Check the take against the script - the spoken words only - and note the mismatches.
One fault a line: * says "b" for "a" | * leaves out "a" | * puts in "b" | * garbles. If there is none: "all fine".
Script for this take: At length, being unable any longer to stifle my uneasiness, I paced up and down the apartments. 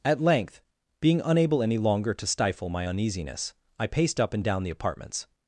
all fine